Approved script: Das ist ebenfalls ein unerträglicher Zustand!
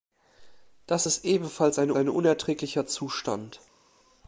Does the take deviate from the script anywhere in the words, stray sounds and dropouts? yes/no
yes